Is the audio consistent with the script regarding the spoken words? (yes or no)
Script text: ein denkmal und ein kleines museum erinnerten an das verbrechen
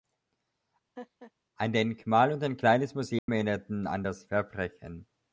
yes